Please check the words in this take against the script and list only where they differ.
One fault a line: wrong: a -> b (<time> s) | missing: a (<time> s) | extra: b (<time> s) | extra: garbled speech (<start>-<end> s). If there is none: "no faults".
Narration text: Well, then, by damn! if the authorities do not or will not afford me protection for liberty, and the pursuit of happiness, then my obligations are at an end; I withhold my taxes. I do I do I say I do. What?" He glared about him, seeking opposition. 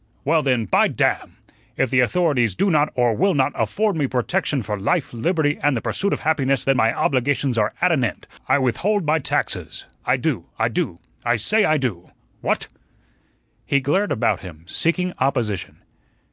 extra: life (4.8 s)